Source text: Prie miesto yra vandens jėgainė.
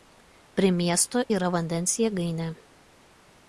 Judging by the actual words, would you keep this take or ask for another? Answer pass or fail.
pass